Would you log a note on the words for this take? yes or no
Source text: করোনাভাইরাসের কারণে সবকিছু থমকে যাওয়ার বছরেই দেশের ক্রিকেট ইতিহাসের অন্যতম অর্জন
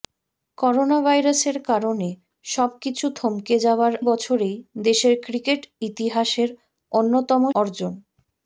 no